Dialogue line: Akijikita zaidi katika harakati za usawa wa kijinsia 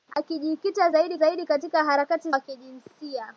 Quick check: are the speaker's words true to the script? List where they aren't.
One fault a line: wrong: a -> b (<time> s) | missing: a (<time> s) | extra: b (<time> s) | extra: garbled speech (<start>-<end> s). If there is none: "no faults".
extra: zaidi (1.1 s)
missing: za usawa (2.3 s)